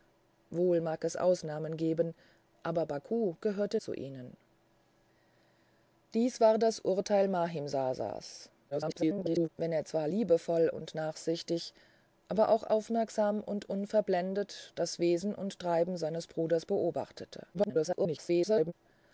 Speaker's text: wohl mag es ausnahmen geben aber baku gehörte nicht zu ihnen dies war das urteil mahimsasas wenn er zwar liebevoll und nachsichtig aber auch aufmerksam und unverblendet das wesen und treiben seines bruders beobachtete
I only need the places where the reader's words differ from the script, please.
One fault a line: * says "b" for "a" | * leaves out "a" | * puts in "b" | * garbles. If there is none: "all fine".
* leaves out "nicht"
* garbles
* garbles